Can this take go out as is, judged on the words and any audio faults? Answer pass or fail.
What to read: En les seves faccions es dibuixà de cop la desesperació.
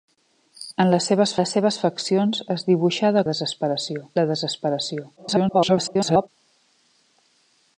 fail